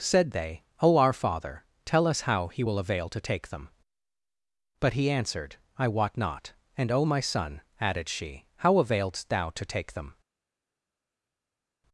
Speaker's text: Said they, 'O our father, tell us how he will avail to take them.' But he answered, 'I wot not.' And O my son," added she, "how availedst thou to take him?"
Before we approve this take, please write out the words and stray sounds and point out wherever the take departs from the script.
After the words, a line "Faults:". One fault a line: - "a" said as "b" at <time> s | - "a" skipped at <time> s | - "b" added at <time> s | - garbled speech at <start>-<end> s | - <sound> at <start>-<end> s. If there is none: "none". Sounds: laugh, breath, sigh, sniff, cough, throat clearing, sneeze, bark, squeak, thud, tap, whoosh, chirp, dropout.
Said they, 'O our father, tell us how he will avail to take them.' But he answered, 'I wot not.' And O my son," added she, "how availedst thou to take them?"
Faults:
- "him" said as "them" at 9.9 s